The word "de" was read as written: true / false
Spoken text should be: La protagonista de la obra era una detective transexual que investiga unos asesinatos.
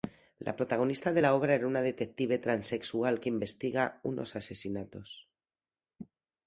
true